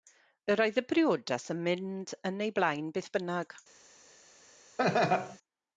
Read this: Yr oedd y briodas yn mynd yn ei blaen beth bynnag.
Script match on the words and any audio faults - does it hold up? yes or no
no